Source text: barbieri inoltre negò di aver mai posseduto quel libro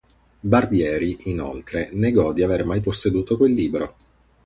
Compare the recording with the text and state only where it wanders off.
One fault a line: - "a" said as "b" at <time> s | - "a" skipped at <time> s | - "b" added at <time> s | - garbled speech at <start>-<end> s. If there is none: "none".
none